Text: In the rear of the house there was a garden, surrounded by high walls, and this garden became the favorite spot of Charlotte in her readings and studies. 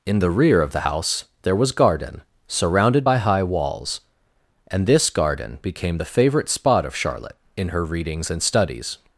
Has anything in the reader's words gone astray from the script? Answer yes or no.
yes